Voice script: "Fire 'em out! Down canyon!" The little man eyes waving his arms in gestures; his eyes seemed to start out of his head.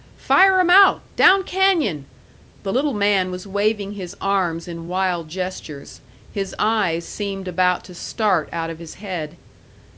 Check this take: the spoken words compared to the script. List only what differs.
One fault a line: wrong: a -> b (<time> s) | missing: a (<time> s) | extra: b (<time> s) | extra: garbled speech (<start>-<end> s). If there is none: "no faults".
wrong: eyes -> was (3.3 s)
extra: wild (4.9 s)
extra: about (7.5 s)